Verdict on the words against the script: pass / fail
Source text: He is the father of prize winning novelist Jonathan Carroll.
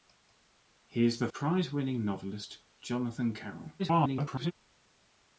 fail